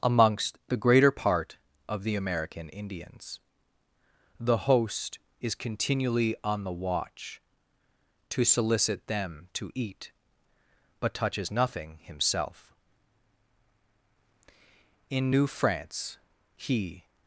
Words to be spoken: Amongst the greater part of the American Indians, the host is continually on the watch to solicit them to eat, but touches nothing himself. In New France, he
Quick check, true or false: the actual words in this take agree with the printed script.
true